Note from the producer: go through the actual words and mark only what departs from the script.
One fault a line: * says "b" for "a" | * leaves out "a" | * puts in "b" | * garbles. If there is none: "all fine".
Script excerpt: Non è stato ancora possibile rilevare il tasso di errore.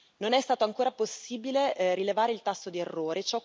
all fine